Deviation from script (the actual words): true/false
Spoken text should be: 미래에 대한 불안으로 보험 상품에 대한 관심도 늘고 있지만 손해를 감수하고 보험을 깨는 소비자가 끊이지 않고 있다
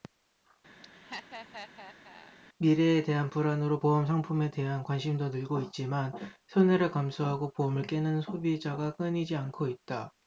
false